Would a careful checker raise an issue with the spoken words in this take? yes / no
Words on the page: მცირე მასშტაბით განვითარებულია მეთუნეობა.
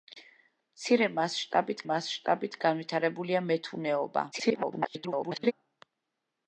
yes